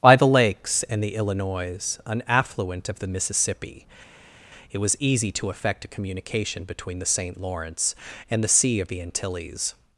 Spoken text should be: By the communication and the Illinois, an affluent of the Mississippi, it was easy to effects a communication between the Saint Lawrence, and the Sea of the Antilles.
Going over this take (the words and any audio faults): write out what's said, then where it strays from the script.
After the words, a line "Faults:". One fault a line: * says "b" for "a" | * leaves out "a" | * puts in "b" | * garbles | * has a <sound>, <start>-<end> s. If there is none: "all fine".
By the lakes and the Illinois, an affluent of the Mississippi, it was easy to effect a communication between the Saint Lawrence, and the Sea of the Antilles.
Faults:
* says "lakes" for "communication"
* says "effect" for "effects"